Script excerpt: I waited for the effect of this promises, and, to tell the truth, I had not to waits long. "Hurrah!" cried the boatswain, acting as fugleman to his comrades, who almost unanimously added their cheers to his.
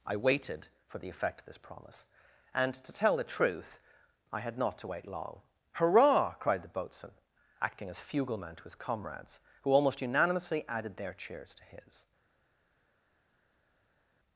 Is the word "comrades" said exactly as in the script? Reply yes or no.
yes